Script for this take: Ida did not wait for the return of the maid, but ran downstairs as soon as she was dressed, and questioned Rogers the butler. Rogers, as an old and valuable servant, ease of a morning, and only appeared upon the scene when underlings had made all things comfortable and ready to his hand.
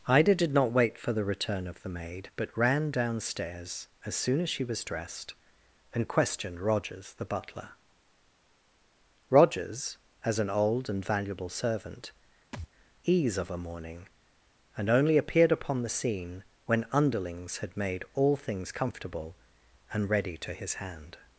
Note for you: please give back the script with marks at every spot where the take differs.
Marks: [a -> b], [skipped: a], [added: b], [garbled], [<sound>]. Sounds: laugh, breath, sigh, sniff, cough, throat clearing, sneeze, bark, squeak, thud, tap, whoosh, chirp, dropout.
Ida did not wait for the return of the maid, but ran downstairs as soon as she was dressed, and questioned Rogers the butler. Rogers, as an old and valuable servant, [thud] ease of a morning, and only appeared upon the scene when underlings had made all things comfortable and ready to his hand.